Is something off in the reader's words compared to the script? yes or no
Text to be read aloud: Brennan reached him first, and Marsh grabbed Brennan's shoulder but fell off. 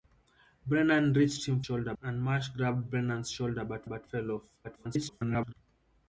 yes